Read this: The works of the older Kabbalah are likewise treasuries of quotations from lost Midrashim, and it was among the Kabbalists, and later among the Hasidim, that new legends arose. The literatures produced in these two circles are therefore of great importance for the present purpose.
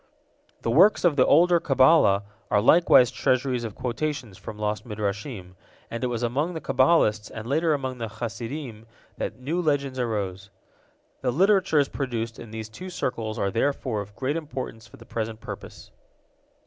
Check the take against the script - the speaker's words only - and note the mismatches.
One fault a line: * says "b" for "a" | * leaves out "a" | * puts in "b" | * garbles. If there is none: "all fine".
all fine